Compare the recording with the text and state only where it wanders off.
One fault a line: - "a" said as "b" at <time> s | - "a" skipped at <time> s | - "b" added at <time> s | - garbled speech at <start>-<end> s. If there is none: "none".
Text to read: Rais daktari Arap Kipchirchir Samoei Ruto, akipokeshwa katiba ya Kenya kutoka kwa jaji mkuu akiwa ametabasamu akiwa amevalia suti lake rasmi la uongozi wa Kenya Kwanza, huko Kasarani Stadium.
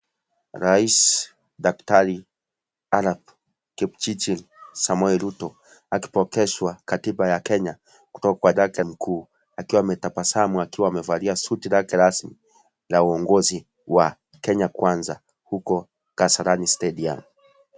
- "jaji" said as "lake" at 8.5 s